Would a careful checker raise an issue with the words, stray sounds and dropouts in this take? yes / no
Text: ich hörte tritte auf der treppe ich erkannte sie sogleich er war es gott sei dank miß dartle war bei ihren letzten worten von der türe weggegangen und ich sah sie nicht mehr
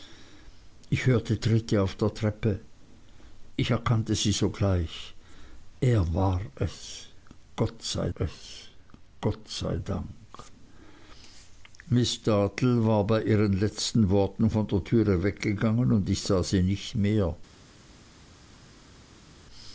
yes